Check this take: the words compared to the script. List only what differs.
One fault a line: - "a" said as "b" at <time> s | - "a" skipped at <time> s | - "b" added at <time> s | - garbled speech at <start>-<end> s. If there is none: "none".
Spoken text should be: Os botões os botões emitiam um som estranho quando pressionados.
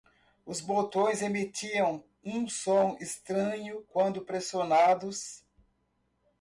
- "os botões" skipped at 1.2 s